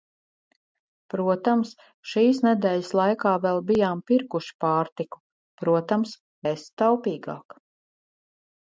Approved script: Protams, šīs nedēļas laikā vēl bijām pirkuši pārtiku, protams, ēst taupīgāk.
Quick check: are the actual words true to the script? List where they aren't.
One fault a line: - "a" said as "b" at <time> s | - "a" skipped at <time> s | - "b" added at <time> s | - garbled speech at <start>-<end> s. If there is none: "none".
none